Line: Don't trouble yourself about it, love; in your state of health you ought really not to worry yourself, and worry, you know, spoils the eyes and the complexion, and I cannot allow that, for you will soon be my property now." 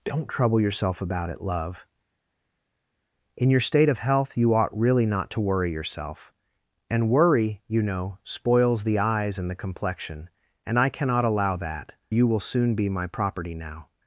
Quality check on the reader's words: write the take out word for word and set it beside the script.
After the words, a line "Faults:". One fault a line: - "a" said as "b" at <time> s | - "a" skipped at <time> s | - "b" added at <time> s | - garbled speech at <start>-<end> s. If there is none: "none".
Don't trouble yourself about it, love; in your state of health you ought really not to worry yourself, and worry, you know, spoils the eyes and the complexion, and I cannot allow that, you will soon be my property now."
Faults:
- "for" skipped at 11.9 s